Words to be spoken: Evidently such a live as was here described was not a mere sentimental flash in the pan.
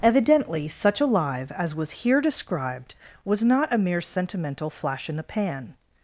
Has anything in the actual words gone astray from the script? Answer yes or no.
no